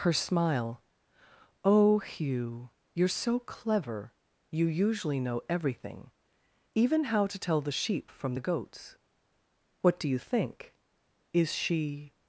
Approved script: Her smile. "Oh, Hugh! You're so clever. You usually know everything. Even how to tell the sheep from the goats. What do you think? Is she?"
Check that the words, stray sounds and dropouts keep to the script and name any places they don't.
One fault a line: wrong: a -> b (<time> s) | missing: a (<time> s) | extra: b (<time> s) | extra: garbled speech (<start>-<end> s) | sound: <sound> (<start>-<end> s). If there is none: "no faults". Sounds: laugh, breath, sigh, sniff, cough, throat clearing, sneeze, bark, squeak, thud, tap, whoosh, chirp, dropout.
no faults